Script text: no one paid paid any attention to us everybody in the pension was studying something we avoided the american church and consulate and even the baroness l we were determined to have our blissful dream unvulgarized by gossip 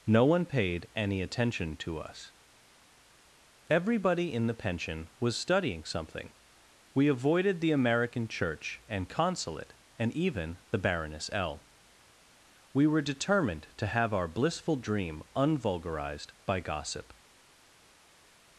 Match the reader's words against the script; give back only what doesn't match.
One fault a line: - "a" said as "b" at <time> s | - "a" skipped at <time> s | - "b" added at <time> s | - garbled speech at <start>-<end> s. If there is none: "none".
- "paid" skipped at 0.9 s